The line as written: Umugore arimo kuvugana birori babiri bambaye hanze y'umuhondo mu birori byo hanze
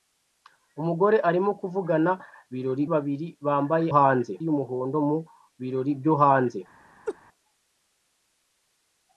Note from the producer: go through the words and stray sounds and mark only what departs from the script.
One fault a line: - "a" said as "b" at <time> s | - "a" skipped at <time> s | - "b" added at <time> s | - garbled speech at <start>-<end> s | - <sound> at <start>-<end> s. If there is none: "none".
- laugh at 7.1-7.2 s